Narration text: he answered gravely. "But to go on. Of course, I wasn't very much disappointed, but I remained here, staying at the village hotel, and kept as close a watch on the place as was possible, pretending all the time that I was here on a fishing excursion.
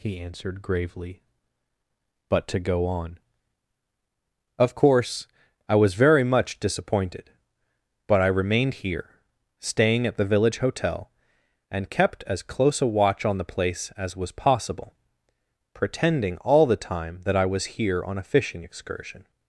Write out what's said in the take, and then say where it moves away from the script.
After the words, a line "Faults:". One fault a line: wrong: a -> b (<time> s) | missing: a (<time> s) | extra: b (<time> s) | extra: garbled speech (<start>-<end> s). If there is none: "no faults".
he answered gravely. "But to go on. Of course, I was very much disappointed, but I remained here, staying at the village hotel, and kept as close a watch on the place as was possible, pretending all the time that I was here on a fishing excursion.
Faults:
wrong: wasn't -> was (5.8 s)